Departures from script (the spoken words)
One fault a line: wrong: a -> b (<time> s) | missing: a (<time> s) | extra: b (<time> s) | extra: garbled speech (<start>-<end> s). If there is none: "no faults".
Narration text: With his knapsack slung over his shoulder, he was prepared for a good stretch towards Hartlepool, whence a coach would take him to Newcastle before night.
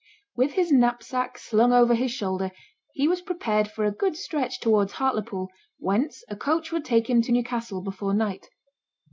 no faults